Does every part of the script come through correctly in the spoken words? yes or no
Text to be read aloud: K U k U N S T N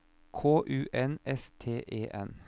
no